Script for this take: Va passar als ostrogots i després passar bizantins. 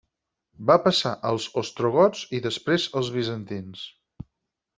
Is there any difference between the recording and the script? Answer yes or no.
yes